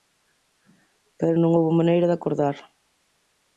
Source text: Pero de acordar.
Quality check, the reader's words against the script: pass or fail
fail